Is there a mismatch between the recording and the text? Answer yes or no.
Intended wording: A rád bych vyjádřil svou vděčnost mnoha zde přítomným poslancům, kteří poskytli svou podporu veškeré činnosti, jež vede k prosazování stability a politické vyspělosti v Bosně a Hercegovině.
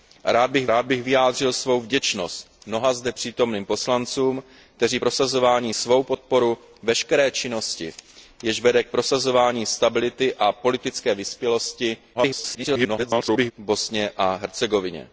yes